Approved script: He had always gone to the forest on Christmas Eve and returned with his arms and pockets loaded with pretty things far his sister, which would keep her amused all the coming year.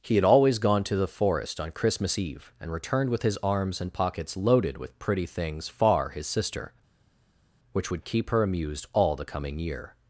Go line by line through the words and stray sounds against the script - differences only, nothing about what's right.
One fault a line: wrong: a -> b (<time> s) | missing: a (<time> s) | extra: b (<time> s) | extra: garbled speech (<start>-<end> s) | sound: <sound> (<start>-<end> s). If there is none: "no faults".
no faults